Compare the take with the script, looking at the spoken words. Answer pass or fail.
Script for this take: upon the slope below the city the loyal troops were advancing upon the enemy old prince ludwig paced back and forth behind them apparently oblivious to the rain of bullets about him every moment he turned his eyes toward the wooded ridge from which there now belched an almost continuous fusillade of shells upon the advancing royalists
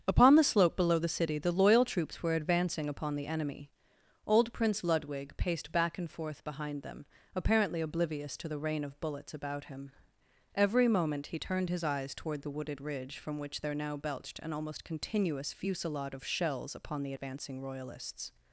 pass